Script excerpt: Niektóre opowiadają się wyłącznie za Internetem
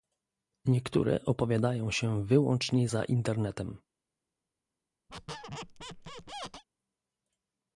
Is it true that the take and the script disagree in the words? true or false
false